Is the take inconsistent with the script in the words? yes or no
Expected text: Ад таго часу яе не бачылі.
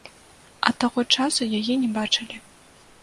no